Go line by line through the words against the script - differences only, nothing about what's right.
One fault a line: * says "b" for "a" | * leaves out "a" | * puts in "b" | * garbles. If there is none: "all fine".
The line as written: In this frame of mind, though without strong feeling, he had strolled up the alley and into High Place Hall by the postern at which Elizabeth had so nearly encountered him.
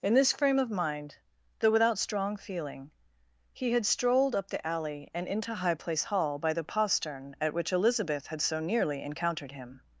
all fine